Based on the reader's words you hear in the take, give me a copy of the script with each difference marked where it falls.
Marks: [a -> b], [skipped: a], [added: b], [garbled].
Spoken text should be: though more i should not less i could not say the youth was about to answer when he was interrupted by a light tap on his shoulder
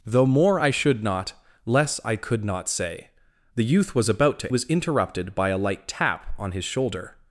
though more i should not less i could not say the youth was about to [skipped: answer when he] was interrupted by a light tap on his shoulder